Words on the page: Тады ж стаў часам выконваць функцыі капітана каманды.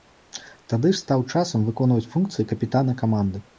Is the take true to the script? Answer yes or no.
yes